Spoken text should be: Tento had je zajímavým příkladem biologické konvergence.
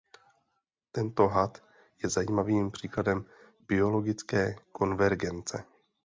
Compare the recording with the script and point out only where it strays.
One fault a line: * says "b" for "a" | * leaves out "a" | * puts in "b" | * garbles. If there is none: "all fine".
all fine